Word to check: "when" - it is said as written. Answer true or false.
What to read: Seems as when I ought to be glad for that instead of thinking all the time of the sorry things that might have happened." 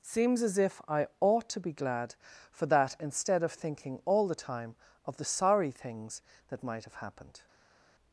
false